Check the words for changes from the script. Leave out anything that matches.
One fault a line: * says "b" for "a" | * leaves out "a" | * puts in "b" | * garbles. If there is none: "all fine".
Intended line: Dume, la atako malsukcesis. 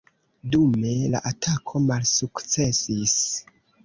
all fine